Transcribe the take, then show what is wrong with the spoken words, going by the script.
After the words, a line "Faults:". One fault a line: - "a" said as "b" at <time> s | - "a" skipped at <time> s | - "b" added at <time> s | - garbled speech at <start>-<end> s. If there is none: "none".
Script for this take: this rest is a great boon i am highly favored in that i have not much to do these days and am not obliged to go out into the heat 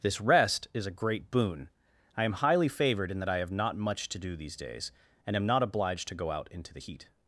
this rest is a great boon i am highly favored in that i have not much to do these days and am not obliged to go out into the heat
Faults:
none